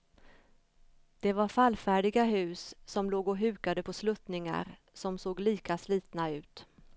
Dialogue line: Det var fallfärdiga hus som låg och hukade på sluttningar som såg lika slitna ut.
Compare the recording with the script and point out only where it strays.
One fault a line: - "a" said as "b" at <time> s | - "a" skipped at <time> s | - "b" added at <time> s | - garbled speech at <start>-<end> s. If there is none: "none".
none